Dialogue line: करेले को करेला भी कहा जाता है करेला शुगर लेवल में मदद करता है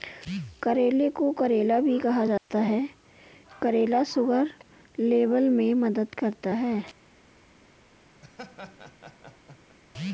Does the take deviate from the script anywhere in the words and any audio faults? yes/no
yes